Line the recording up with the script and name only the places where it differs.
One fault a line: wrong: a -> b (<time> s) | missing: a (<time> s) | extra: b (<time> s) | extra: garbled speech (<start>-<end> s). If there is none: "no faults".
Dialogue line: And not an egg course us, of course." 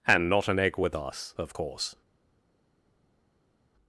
wrong: course -> with (0.8 s)